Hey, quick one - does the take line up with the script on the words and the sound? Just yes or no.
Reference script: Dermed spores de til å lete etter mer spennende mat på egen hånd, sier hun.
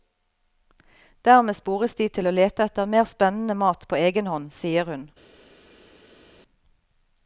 yes